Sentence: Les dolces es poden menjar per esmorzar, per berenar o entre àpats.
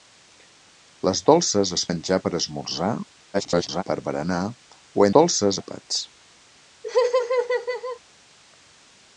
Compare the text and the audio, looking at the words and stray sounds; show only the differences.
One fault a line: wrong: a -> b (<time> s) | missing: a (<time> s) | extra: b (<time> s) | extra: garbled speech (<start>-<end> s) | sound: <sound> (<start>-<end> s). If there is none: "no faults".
missing: poden (1.8 s)
extra: garbled speech (3.3-3.8 s)
wrong: entre -> dolces (5.1 s)
sound: laugh (6.8-8.0 s)